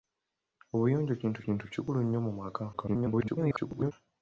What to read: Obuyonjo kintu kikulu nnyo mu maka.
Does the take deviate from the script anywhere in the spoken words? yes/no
yes